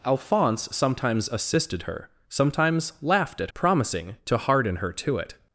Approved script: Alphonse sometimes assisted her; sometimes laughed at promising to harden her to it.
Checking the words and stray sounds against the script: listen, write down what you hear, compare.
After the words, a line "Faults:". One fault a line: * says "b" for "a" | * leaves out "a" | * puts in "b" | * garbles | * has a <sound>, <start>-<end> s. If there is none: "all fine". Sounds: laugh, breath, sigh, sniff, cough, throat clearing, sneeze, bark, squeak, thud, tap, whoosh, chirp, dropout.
Alphonse sometimes assisted her; sometimes laughed at promising to harden her to it.
Faults:
all fine